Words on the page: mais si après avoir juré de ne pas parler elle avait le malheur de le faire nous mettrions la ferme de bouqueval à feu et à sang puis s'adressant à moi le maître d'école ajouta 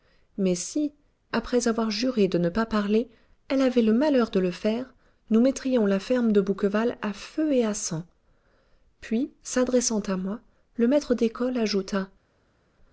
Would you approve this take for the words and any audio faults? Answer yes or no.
yes